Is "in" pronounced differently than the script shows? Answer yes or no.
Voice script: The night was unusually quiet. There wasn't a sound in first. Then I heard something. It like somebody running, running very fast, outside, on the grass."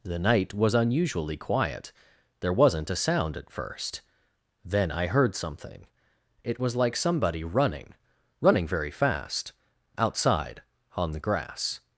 yes